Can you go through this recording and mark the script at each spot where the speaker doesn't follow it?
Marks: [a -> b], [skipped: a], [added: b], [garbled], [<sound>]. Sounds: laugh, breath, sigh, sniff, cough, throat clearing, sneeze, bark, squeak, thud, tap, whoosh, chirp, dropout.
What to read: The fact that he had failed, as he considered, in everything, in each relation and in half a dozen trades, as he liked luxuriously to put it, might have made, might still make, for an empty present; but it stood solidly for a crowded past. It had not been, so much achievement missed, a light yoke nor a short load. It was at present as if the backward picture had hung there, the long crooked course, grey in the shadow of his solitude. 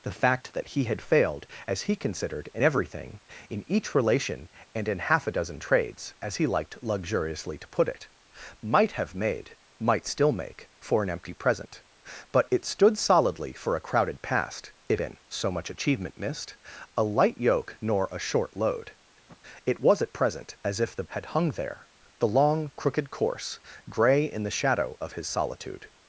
The fact that he had failed, as he considered, in everything, in each relation and in half a dozen trades, as he liked luxuriously to put it, might have made, might still make, for an empty present; but it stood solidly for a crowded past. It [skipped: had not] been, so much achievement missed, a light yoke nor a short load. [sniff] It was at present as if the [skipped: backward picture] had hung there, the long crooked course, grey in the shadow of his solitude.